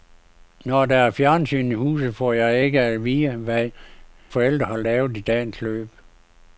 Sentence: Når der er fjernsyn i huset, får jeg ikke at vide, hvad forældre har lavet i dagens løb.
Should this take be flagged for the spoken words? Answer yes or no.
no